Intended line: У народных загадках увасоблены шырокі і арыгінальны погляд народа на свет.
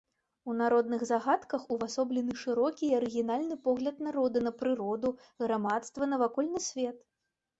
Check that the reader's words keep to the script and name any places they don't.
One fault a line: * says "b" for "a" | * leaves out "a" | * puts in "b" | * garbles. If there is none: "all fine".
* puts in "прыроду грамадства навакольны"